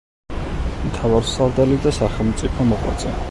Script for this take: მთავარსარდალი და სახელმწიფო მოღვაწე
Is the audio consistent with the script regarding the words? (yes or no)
yes